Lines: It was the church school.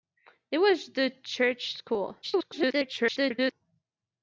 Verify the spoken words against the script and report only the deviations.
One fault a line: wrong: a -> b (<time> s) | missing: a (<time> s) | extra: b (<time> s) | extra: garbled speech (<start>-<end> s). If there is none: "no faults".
extra: garbled speech (2.2-3.5 s)